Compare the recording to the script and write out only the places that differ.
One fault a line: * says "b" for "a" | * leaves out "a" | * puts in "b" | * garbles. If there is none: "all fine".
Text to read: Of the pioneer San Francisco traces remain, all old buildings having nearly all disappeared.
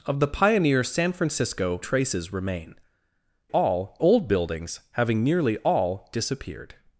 all fine